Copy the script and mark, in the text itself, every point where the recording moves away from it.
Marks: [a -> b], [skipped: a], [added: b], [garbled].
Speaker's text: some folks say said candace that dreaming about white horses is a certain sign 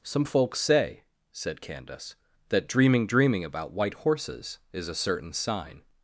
some folks say said candace that dreaming [added: dreaming] about white horses is a certain sign